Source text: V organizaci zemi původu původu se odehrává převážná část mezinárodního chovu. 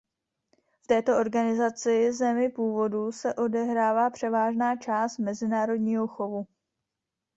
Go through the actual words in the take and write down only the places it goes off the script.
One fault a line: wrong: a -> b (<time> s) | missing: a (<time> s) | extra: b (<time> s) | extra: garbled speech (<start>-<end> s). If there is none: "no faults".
extra: této (0.9 s)
missing: původu (3.1 s)